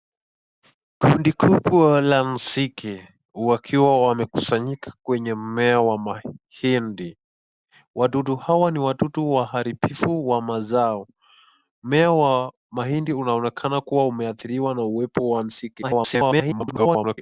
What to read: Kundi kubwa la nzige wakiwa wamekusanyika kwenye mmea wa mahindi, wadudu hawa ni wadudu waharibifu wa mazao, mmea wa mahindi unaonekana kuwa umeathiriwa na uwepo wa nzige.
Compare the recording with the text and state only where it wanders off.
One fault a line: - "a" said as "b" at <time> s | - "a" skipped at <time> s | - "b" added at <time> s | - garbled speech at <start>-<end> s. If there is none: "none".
- garbled speech at 15.8-17.2 s